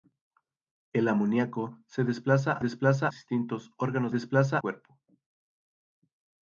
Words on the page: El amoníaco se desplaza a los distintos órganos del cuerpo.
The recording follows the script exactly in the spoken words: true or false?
false